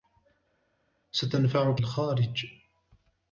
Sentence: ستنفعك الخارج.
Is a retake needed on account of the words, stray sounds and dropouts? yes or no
no